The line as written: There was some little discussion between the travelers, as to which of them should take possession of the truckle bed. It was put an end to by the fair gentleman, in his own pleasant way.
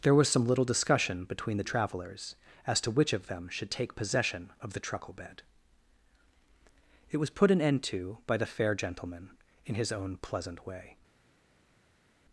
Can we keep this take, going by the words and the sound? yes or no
yes